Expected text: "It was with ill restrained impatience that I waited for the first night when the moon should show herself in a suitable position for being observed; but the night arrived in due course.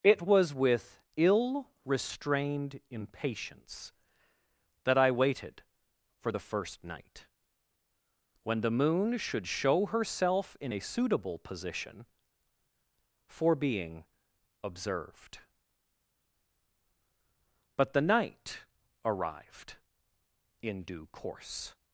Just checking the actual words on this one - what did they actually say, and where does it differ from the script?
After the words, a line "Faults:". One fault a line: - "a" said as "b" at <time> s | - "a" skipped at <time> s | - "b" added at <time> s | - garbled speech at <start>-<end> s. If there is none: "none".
"It was with ill restrained impatience that I waited for the first night when the moon should show herself in a suitable position for being observed; but the night arrived in due course.
Faults:
none